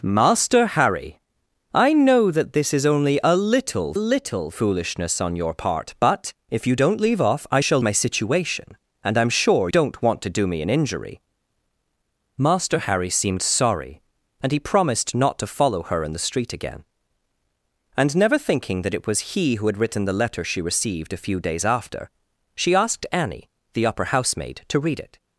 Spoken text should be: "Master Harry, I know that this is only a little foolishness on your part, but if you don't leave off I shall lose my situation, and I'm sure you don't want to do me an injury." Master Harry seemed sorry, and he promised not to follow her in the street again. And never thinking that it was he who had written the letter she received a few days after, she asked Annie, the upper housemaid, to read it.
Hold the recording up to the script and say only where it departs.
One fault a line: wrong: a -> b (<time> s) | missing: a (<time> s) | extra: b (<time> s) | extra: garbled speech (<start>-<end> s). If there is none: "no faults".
extra: little (3.9 s)
missing: lose (7.8 s)
missing: you (9.7 s)